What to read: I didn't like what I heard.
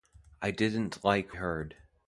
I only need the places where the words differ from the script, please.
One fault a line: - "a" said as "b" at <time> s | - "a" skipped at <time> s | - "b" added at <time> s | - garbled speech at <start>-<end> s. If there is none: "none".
- "what I" skipped at 1.4 s